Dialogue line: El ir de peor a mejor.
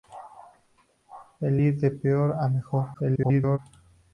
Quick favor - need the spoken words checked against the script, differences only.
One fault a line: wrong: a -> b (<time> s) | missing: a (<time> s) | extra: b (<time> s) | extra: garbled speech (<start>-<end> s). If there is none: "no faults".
extra: garbled speech (2.9-3.6 s)